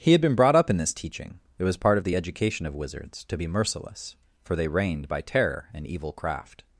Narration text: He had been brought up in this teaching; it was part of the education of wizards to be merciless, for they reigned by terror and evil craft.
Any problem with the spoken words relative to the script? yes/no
no